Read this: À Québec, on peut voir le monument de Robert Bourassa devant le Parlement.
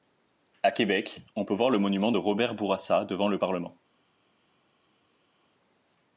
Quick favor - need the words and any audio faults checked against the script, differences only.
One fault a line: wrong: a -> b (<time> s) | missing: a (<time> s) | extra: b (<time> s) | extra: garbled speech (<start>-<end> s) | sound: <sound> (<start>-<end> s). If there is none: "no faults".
no faults